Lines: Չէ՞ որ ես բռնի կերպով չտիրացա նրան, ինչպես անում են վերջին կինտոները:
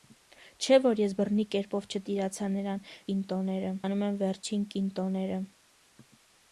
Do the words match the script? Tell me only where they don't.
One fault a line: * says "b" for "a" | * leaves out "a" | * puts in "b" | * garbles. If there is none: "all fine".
* says "կինտոները" for "ինչպես"